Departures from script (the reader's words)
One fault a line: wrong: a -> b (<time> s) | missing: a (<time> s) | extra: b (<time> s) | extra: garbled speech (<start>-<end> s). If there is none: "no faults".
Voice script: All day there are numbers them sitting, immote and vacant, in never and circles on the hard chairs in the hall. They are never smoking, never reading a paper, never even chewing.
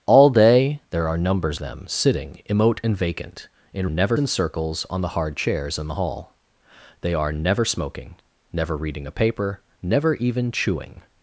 no faults